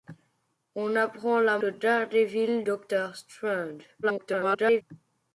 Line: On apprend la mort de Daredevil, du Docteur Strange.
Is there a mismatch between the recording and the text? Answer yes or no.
yes